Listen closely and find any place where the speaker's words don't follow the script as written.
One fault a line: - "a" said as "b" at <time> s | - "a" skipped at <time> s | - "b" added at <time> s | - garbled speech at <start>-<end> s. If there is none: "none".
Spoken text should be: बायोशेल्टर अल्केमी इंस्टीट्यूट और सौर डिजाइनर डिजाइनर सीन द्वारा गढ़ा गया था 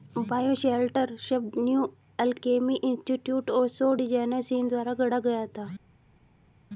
- "शब्द न्यू" added at 1.2 s
- "डिजाइनर" skipped at 4.4 s